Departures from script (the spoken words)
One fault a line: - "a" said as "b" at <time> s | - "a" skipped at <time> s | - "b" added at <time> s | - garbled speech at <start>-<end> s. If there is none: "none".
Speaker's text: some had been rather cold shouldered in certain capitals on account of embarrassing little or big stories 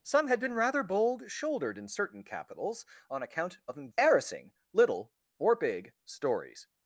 - "cold" said as "bold" at 0.8 s